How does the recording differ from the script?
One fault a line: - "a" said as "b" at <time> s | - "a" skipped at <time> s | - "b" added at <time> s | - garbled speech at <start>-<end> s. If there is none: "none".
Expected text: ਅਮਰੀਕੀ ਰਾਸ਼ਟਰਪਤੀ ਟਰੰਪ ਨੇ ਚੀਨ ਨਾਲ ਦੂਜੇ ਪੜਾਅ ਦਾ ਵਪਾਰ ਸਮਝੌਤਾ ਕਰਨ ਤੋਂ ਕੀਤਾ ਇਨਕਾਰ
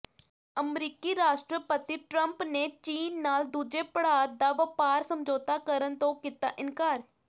none